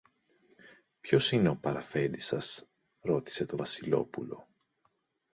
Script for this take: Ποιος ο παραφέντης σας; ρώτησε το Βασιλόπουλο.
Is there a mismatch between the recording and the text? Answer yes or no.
yes